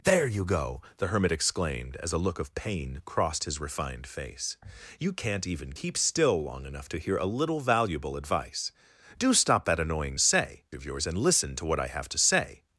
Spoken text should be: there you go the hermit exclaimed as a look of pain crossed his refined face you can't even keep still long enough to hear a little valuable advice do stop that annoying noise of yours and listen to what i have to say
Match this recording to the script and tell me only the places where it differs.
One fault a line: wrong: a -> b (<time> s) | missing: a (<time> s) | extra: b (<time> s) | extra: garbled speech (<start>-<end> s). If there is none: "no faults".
wrong: noise -> say (10.2 s)